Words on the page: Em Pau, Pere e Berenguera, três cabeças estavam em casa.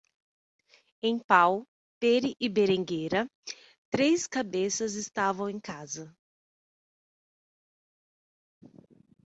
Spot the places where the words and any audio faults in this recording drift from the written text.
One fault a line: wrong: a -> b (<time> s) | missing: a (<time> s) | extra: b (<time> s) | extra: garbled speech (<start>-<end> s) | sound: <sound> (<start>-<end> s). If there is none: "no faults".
no faults